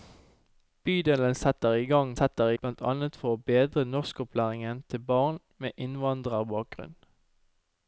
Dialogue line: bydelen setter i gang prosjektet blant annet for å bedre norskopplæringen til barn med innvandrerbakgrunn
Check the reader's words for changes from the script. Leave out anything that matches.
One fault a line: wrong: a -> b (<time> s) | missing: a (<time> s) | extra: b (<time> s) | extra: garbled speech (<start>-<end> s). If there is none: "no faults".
wrong: prosjektet -> setter (2.1 s)